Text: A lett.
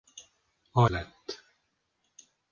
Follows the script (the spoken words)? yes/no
yes